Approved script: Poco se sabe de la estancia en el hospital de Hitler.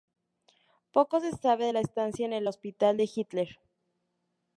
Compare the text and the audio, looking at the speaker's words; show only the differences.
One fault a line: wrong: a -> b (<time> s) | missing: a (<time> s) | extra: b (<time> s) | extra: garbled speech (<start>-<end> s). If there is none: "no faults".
no faults